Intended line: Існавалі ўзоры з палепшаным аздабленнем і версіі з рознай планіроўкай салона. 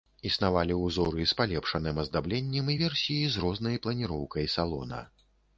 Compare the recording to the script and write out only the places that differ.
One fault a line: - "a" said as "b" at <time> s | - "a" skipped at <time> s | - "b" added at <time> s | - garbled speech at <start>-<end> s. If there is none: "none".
none